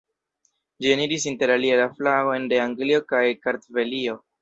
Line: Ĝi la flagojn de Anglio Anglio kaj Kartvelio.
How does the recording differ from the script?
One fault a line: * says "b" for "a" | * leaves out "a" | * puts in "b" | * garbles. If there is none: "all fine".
* puts in "eniris interalie"
* leaves out "Anglio"